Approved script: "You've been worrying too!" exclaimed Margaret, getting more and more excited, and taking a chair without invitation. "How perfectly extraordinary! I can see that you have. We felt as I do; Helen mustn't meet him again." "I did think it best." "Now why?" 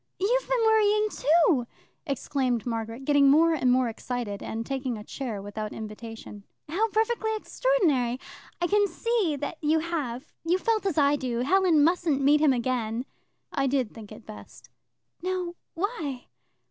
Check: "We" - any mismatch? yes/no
yes